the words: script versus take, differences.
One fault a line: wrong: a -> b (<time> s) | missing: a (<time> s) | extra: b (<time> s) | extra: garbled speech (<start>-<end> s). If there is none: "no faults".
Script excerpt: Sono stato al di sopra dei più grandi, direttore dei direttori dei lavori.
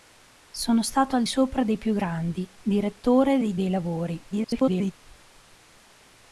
missing: di (1.2 s)
missing: direttori (3.5 s)
extra: garbled speech (4.3-4.9 s)